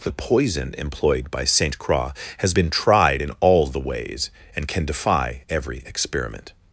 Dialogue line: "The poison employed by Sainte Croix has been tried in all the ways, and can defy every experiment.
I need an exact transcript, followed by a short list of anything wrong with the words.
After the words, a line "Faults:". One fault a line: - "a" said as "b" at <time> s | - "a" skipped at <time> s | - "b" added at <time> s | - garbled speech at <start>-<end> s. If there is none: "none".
"The poison employed by Sainte Croix has been tried in all the ways, and can defy every experiment.
Faults:
none